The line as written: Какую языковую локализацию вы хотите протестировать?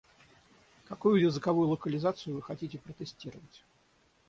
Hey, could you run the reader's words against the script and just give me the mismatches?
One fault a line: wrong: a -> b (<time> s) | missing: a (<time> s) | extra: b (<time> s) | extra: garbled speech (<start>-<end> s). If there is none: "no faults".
no faults